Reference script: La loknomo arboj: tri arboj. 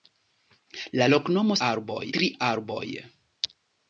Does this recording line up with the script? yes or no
yes